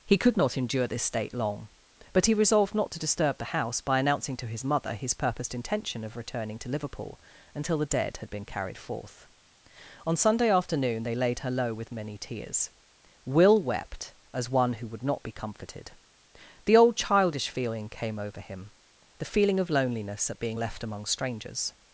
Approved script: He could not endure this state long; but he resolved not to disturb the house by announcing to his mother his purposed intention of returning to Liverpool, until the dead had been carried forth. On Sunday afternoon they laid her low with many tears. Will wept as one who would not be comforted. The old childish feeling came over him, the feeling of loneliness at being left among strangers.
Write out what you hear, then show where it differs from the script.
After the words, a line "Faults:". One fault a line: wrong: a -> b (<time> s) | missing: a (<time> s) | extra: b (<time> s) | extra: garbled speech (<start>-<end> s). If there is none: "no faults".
He could not endure this state long; but he resolved not to disturb the house by announcing to his mother his purposed intention of returning to Liverpool, until the dead had been carried forth. On Sunday afternoon they laid her low with many tears. Will wept as one who would not be comforted. The old childish feeling came over him, the feeling of loneliness at being left among strangers.
Faults:
no faults